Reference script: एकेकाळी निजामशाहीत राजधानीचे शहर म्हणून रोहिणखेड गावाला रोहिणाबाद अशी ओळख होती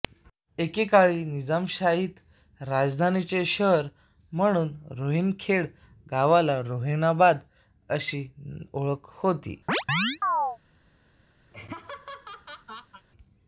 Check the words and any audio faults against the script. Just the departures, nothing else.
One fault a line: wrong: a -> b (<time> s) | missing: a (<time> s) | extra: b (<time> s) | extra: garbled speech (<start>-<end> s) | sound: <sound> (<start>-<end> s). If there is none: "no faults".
sound: chirp (9.7-10.6 s)
sound: laugh (11.5-13.0 s)